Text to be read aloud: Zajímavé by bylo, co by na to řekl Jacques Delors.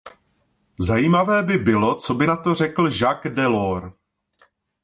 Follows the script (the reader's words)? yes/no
yes